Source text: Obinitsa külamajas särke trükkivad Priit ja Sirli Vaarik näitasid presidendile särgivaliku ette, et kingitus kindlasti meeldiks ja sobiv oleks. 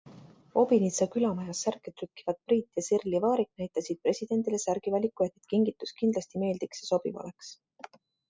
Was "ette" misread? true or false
true